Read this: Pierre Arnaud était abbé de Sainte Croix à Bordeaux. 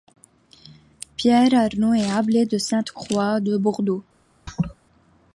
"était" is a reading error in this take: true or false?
true